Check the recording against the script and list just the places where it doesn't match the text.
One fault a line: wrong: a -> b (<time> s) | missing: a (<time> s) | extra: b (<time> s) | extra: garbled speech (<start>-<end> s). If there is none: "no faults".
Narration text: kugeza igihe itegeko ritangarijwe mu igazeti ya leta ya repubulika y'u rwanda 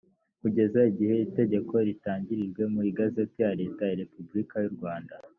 no faults